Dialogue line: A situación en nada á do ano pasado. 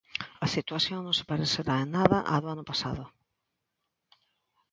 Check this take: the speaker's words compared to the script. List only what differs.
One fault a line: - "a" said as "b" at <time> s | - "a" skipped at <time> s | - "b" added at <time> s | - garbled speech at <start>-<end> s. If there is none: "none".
- "non se parecerá" added at 1.0 s